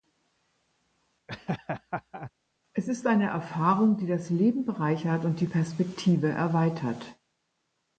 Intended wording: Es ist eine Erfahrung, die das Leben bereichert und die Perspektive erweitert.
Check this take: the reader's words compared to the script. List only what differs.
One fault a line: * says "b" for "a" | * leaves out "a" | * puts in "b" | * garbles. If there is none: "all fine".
all fine